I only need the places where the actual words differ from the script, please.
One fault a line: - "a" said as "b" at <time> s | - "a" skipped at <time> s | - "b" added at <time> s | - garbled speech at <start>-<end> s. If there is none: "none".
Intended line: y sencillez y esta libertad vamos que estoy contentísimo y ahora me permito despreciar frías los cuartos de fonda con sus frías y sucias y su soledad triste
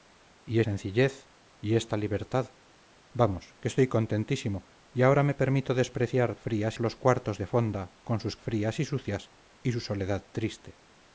none